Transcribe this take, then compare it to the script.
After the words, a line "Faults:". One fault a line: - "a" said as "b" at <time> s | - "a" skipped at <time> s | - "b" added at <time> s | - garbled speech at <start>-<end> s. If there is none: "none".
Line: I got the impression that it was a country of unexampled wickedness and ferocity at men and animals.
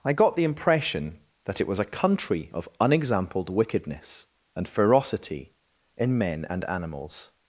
I got the impression that it was a country of unexampled wickedness and ferocity in men and animals.
Faults:
- "at" said as "in" at 6.0 s